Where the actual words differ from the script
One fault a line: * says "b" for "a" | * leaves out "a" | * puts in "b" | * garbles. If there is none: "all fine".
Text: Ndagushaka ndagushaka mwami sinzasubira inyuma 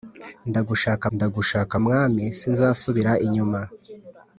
all fine